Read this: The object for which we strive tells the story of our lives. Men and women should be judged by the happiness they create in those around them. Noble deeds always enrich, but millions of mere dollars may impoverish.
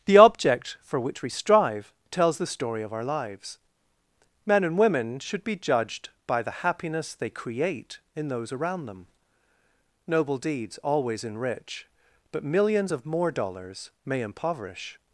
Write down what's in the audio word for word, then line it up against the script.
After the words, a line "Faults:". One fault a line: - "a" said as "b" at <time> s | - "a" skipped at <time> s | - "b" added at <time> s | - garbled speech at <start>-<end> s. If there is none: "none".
The object for which we strive tells the story of our lives. Men and women should be judged by the happiness they create in those around them. Noble deeds always enrich, but millions of more dollars may impoverish.
Faults:
- "mere" said as "more" at 13.1 s